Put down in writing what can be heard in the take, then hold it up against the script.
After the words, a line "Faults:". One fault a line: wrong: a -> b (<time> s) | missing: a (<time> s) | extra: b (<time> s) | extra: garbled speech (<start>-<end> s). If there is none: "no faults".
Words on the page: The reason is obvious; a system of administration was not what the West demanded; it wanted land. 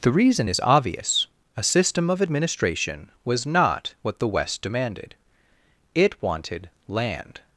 The reason is obvious; a system of administration was not what the West demanded; it wanted land.
Faults:
no faults